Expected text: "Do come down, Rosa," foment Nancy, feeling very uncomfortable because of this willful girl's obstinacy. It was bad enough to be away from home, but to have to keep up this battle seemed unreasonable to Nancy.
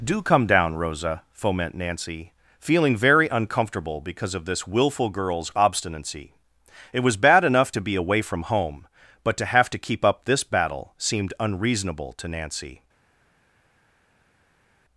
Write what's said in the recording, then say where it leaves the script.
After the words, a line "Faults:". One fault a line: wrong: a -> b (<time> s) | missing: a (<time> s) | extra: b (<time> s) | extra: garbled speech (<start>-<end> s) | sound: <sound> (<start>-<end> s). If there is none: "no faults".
"Do come down, Rosa," foment Nancy, feeling very uncomfortable because of this willful girl's obstinacy. It was bad enough to be away from home, but to have to keep up this battle seemed unreasonable to Nancy.
Faults:
no faults